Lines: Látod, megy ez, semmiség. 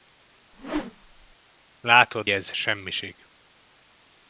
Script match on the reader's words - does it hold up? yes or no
no